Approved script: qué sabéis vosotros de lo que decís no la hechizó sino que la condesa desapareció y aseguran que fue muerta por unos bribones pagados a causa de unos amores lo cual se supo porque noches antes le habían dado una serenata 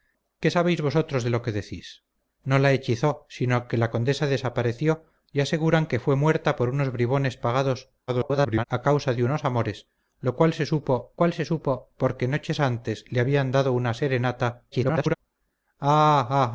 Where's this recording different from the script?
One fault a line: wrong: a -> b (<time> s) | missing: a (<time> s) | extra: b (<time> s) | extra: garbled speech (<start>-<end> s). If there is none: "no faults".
extra: garbled speech (8.1-8.6 s)
extra: cual se supo (11.2 s)
extra: garbled speech (14.7-15.1 s)